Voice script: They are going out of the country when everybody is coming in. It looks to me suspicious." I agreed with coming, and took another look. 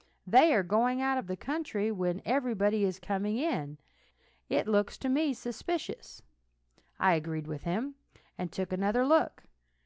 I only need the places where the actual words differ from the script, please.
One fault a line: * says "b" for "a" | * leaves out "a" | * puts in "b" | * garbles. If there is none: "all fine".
* says "him" for "coming"